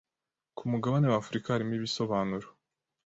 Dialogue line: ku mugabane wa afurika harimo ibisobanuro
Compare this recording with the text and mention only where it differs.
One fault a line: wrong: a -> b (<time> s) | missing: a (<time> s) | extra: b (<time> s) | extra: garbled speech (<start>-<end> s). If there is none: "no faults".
no faults